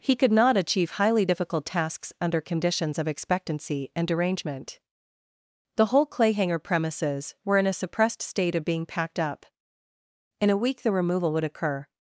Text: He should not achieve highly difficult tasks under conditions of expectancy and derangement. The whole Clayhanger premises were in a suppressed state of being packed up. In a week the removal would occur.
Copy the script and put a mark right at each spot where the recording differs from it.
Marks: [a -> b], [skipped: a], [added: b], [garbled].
He [should -> could] not achieve highly difficult tasks under conditions of expectancy and derangement. The whole Clayhanger premises were in a suppressed state of being packed up. In a week the removal would occur.